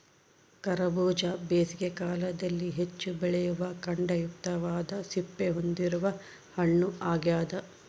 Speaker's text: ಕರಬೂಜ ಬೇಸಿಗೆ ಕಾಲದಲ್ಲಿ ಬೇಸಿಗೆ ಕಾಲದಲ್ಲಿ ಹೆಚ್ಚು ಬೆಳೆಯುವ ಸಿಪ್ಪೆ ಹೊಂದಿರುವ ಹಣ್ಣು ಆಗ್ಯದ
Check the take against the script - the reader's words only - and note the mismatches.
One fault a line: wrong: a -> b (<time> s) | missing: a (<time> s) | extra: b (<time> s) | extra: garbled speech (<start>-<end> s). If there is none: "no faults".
missing: ಬೇಸಿಗೆ ಕಾಲದಲ್ಲಿ (2.7 s)
extra: ಖಂಡಯುಕ್ತವಾದ (3.8 s)